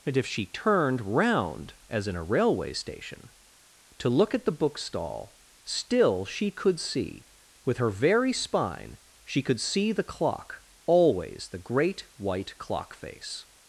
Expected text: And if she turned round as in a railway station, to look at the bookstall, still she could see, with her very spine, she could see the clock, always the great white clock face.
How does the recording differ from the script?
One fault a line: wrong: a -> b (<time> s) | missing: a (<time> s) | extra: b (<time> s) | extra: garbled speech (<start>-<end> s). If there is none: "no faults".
no faults